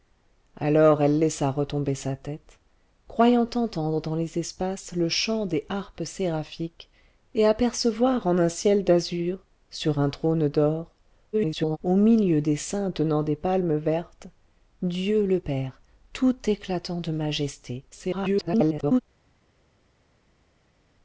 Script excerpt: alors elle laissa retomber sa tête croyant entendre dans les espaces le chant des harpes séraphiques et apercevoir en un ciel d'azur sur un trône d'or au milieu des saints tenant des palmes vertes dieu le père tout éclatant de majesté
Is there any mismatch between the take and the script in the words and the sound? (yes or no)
yes